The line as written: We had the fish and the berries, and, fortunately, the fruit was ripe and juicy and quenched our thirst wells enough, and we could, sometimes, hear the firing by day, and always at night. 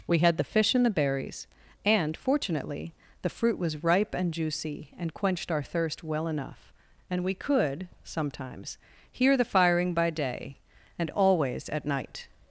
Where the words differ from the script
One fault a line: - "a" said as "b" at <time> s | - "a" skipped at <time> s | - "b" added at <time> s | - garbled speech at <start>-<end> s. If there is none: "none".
- "wells" said as "well" at 6.0 s